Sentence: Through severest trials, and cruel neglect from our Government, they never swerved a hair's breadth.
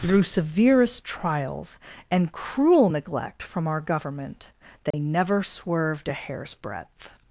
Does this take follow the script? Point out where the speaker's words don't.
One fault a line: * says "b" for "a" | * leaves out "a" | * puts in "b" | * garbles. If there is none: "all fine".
all fine